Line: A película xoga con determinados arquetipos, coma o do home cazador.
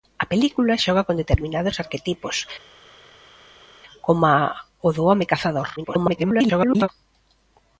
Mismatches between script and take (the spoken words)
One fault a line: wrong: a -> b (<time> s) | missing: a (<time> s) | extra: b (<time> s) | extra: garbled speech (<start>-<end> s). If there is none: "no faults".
extra: garbled speech (5.8-6.9 s)